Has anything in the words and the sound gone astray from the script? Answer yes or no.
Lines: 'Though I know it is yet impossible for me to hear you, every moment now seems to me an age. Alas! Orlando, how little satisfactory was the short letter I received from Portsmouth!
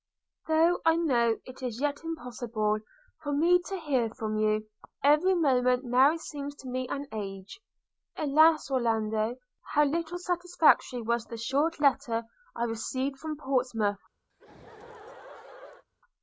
yes